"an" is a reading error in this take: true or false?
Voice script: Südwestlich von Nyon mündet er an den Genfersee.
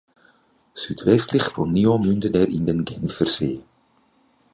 true